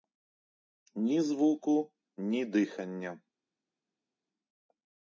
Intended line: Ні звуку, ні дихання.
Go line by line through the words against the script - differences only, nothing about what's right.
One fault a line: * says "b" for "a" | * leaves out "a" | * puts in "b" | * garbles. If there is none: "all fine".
all fine